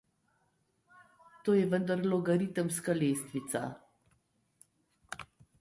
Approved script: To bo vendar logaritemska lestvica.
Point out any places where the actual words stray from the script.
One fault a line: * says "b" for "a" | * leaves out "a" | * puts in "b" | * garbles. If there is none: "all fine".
* says "je" for "bo"